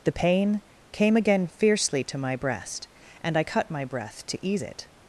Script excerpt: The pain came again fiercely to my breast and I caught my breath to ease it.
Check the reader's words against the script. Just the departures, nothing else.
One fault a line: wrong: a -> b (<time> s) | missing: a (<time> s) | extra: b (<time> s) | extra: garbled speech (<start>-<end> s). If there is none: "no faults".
wrong: caught -> cut (3.4 s)